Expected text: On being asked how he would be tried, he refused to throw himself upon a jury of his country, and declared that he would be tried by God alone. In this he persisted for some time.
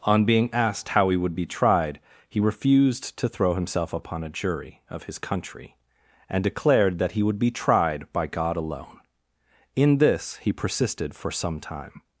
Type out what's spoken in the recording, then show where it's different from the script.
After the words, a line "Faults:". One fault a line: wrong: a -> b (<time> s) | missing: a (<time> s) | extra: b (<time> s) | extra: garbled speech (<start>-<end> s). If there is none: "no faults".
On being asked how he would be tried, he refused to throw himself upon a jury of his country, and declared that he would be tried by God alone. In this he persisted for some time.
Faults:
no faults